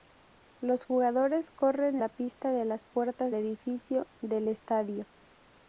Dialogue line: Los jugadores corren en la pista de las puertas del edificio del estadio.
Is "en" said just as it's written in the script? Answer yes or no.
no